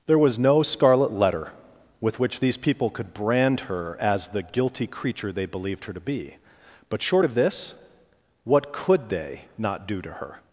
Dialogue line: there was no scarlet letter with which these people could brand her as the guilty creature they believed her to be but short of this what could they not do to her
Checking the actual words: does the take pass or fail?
pass